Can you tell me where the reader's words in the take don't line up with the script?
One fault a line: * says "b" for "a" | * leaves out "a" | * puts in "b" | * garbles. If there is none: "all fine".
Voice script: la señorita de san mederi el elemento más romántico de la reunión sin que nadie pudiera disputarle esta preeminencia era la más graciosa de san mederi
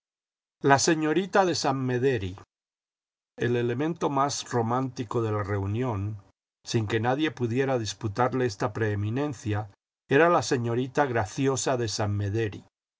* says "señorita" for "más"